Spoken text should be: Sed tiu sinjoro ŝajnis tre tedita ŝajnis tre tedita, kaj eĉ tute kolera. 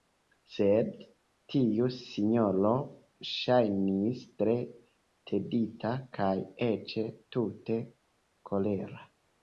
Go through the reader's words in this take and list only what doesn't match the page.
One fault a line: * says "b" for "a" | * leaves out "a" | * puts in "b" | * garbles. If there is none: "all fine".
* leaves out "ŝajnis tre tedita"